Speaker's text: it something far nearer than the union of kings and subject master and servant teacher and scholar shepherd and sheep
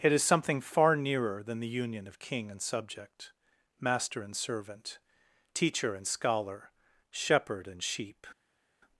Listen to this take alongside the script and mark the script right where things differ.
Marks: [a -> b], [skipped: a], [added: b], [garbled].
it [added: is] something far nearer than the union of [kings -> king] and subject master and servant teacher and scholar shepherd and sheep